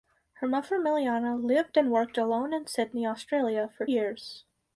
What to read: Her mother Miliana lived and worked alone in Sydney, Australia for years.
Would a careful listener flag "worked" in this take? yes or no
no